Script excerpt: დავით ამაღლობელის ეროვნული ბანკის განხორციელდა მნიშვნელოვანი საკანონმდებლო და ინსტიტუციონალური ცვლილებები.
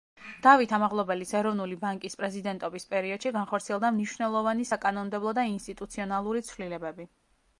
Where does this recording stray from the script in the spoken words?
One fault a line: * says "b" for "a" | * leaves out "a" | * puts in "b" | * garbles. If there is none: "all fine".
* puts in "პრეზიდენტობის პერიოდში"